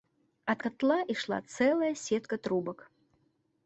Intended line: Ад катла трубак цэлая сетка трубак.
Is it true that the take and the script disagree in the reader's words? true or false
true